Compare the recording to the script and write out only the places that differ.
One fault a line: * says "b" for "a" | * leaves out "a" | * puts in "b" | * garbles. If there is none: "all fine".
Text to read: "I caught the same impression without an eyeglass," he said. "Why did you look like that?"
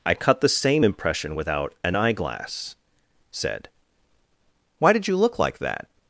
* says "cut" for "caught"
* leaves out "he"